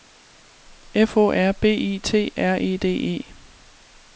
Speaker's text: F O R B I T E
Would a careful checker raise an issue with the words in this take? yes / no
yes